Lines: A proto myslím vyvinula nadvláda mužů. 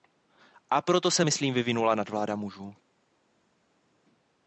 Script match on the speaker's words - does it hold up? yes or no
no